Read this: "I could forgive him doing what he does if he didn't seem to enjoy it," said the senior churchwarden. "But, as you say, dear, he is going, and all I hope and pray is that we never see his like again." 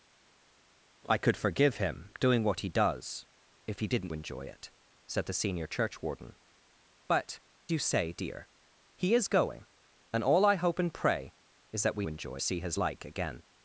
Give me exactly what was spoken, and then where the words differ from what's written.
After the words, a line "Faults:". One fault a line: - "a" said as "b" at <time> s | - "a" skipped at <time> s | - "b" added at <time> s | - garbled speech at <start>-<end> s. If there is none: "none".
"I could forgive him doing what he does if he didn't enjoy it," said the senior churchwarden. "But, you say, dear, he is going, and all I hope and pray is that we enjoy see his like again."
Faults:
- "seem to" skipped at 4.1 s
- "as" skipped at 7.4 s
- "never" said as "enjoy" at 12.1 s